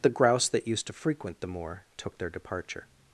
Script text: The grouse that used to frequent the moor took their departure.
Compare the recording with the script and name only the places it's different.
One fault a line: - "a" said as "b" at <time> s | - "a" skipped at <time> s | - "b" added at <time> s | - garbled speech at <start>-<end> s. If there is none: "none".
none